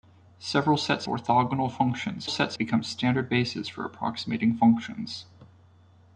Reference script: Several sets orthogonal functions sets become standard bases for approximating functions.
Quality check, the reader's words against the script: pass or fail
pass